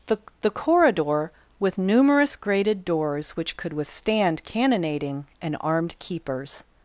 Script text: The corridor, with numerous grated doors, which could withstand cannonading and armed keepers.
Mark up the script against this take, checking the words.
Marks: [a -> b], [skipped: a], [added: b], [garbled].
The [added: the] corridor, with numerous grated doors, which could withstand cannonading and armed keepers.